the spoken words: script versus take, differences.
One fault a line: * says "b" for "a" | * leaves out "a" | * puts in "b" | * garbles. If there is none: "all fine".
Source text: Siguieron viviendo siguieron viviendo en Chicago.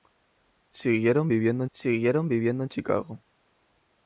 all fine